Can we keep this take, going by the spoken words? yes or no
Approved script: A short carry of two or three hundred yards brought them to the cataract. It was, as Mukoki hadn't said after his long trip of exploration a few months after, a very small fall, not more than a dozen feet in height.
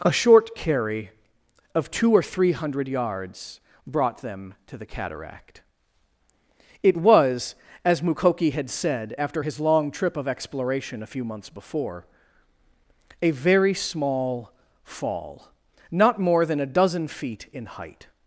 no